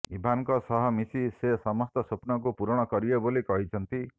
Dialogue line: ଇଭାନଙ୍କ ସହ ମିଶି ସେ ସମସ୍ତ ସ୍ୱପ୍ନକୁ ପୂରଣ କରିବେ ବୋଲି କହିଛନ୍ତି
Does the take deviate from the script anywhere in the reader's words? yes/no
no